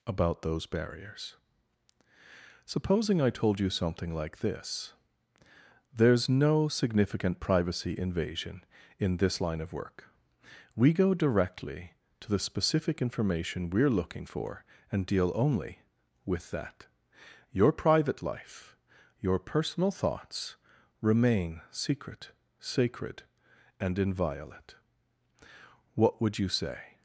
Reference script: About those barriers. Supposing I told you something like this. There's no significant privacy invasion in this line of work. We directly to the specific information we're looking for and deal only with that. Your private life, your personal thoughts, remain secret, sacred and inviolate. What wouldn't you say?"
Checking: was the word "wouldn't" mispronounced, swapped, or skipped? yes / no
yes